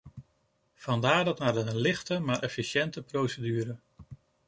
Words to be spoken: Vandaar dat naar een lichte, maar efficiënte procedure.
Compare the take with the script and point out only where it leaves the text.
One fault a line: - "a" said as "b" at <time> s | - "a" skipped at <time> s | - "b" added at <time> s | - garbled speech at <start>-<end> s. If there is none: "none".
none